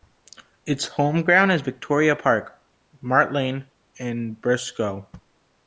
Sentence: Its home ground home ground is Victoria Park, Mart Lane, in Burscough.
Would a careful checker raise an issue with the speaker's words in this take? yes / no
yes